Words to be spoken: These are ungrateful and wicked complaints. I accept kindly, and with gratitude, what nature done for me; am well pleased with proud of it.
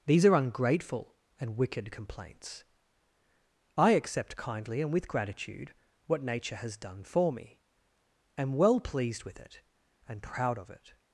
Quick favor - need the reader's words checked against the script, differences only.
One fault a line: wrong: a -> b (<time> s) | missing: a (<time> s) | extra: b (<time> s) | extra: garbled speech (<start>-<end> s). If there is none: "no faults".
extra: has (6.6 s)
extra: it and (9.4 s)